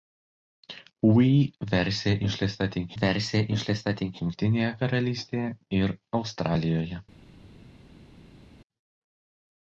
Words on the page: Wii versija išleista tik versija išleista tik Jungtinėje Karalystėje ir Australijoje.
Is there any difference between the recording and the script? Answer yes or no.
no